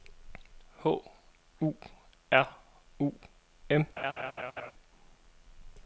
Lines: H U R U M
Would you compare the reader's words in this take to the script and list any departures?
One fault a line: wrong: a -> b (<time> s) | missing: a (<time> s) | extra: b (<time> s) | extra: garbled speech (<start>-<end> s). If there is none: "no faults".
no faults